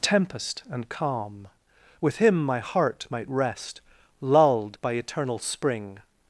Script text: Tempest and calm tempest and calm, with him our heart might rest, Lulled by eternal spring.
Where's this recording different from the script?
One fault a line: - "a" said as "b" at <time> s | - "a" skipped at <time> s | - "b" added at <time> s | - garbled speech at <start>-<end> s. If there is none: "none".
- "tempest and calm" skipped at 1.5 s
- "our" said as "my" at 2.4 s